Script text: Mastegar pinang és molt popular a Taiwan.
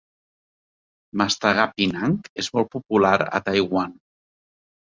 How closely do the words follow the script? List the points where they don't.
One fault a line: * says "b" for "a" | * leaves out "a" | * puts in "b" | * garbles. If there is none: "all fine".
all fine